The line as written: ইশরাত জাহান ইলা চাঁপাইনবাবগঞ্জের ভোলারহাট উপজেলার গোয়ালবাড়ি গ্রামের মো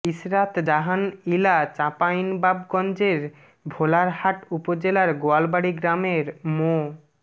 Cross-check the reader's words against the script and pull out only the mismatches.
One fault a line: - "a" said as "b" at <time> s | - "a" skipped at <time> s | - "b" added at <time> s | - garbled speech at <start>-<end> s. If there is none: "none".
none